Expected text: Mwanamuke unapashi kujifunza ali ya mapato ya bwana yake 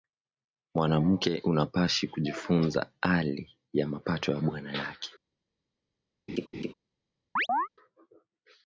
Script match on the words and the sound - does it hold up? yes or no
no